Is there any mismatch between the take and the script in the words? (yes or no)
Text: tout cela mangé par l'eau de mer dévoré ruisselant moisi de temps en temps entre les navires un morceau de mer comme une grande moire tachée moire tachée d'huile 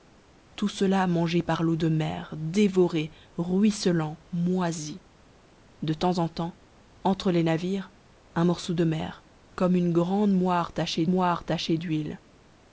no